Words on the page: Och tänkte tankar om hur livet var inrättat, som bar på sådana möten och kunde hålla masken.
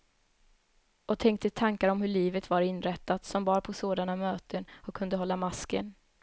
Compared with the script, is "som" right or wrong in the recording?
right